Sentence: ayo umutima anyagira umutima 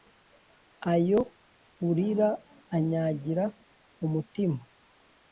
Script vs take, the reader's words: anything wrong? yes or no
yes